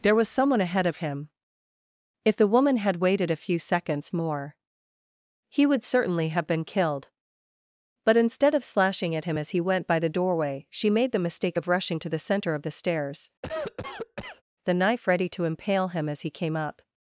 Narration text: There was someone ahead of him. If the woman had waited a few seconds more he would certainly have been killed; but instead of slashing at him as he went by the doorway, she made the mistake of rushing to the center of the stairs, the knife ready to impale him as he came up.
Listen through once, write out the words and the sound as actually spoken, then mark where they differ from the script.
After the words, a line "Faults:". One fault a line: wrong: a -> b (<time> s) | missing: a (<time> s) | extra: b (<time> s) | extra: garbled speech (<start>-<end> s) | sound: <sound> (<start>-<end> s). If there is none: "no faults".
There was someone ahead of him. If the woman had waited a few seconds more he would certainly have been killed; but instead of slashing at him as he went by the doorway, she made the mistake of rushing to the center of the stairs, the knife ready to impale him as he came up.
Faults:
sound: cough (13.4-14.4 s)